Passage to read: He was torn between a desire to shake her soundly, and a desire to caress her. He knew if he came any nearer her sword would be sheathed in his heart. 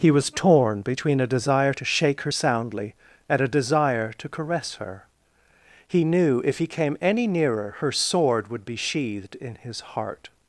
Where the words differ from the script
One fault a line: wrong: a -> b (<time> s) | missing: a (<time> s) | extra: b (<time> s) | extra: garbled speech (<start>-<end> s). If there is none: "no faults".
no faults